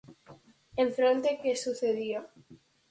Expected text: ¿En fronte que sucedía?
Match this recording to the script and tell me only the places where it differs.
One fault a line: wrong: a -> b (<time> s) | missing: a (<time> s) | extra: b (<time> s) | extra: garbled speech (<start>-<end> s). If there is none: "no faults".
no faults